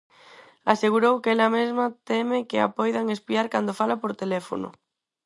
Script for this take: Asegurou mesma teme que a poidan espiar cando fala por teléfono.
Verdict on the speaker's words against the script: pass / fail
fail